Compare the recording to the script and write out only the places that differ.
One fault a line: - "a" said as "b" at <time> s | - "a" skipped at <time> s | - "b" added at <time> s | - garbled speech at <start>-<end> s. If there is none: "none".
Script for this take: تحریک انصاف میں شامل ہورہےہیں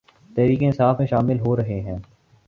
none